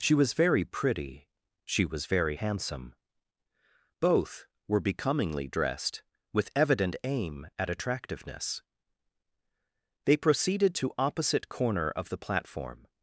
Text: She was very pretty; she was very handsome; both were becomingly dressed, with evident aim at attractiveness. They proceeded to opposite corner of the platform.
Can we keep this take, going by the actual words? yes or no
yes